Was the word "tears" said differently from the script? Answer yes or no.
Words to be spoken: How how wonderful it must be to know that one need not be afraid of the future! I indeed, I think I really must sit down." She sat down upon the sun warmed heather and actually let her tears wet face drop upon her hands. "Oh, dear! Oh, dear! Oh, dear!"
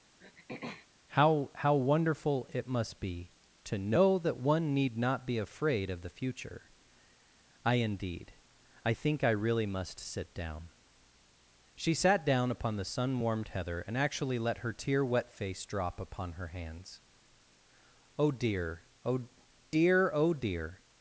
yes